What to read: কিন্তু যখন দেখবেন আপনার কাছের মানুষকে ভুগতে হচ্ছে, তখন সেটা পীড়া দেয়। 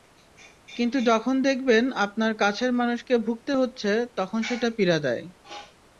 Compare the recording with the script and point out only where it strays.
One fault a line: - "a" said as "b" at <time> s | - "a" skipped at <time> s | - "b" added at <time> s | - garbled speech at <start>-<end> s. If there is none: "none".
none